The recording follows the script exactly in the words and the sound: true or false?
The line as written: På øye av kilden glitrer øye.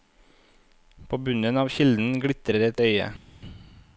false